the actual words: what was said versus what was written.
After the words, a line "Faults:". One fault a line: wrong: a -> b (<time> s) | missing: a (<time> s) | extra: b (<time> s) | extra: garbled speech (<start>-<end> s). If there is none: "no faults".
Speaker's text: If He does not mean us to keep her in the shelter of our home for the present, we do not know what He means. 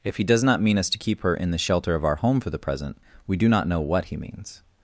If He does not mean us to keep her in the shelter of our home for the present, we do not know what He means.
Faults:
no faults